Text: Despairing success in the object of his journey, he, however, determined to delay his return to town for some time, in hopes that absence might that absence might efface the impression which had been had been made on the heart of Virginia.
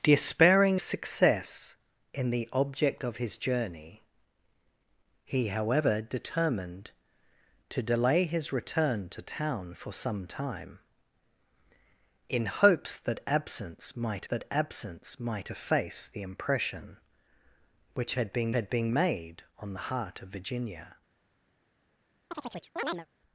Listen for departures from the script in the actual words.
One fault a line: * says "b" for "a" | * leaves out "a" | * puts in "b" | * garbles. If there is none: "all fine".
all fine